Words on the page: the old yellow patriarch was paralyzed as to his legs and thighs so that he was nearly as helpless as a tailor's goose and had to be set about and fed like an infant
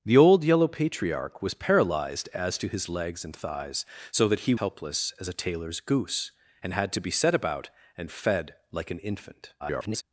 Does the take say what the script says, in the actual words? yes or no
no